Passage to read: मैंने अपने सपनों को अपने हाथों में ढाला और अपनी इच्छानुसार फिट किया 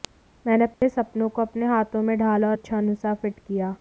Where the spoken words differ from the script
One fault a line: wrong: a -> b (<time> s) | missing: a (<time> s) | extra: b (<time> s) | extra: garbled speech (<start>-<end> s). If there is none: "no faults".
missing: अपनी (2.6 s)